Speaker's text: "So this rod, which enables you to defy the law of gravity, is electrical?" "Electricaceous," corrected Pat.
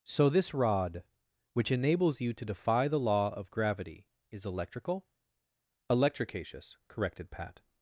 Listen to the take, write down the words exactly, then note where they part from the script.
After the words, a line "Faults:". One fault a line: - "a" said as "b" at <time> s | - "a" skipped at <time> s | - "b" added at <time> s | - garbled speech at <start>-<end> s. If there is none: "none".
"So this rod, which enables you to defy the law of gravity, is electrical?" "Electricaceous," corrected Pat.
Faults:
none